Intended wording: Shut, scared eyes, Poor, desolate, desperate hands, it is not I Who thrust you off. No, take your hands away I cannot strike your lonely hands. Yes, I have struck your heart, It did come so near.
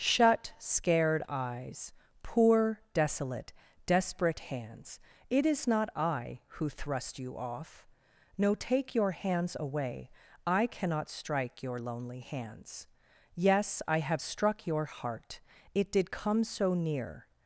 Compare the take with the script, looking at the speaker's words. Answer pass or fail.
pass